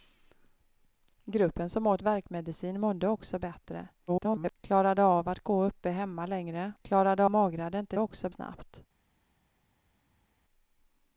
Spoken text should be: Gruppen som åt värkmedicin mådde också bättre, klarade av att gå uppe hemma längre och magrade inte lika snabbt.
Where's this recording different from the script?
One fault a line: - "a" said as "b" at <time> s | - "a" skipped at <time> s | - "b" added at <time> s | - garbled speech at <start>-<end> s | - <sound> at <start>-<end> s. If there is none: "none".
- garbled speech at 4.1-4.6 s
- "och" said as "klarade" at 6.8 s
- "lika" said as "också" at 8.0 s